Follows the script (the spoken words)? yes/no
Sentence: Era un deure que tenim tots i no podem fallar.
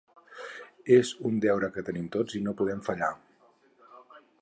no